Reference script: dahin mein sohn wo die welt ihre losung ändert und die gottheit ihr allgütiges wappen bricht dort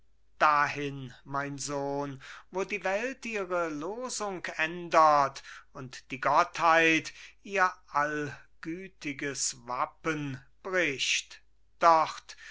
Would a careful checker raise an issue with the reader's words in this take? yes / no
no